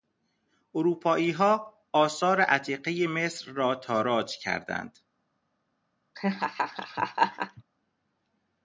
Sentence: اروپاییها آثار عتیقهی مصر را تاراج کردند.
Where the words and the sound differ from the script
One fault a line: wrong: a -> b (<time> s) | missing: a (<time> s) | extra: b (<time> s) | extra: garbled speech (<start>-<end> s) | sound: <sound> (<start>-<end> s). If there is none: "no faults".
sound: laugh (6.1-7.6 s)